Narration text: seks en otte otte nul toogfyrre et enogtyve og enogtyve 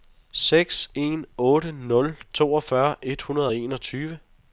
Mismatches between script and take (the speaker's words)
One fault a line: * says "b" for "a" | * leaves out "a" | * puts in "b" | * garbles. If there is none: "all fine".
* leaves out "otte"
* says "hundrede" for "enogtyve"